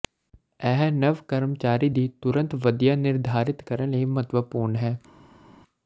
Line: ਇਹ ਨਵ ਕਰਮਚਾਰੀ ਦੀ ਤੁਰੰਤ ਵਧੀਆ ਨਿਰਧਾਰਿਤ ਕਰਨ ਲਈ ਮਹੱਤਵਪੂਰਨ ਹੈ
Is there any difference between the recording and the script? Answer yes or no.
no